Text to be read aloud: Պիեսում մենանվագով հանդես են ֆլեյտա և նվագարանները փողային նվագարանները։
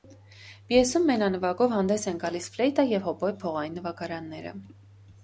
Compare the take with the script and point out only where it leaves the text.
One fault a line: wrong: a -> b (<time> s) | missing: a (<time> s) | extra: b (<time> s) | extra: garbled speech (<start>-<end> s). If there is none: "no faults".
extra: գալիս (2.2 s)
wrong: նվագարանները -> հոբոյ (3.1 s)